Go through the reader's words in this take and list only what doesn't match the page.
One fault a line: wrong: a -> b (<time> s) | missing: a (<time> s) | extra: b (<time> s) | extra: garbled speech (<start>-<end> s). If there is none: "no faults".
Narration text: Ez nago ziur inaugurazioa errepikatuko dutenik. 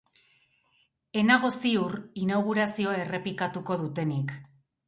no faults